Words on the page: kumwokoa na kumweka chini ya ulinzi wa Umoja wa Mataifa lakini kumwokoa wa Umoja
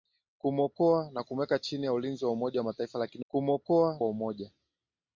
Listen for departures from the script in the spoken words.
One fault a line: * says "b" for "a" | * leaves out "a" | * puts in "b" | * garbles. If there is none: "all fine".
all fine